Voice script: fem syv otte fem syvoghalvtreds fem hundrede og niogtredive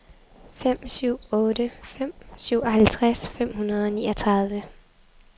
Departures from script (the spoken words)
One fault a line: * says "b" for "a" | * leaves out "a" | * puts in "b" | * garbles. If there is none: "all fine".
all fine